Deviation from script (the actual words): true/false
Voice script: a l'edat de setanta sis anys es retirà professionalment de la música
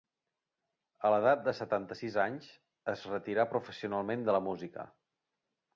false